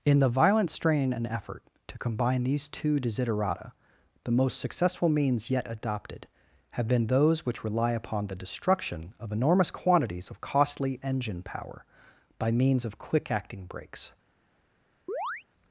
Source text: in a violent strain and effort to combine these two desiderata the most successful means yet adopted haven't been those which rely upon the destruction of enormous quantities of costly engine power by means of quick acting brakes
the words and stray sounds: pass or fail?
fail